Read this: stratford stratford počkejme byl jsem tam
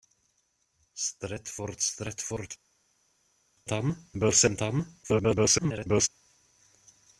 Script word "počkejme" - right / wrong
wrong